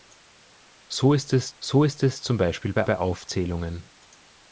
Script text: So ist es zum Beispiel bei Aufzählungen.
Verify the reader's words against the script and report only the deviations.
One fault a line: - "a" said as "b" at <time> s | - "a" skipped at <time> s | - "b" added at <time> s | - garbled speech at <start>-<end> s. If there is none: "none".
- "so ist es" added at 1.6 s
- "bei" added at 2.8 s